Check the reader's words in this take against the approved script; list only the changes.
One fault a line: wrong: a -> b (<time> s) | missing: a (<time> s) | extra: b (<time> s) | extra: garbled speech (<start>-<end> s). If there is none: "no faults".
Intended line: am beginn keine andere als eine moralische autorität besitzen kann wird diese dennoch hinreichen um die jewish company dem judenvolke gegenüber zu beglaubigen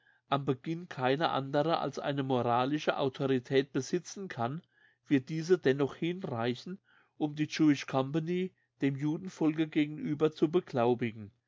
no faults